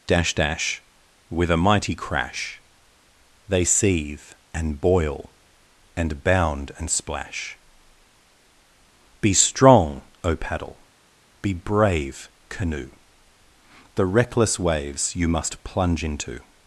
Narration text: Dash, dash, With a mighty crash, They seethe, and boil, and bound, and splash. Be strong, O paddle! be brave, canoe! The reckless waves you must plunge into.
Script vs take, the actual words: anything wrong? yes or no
no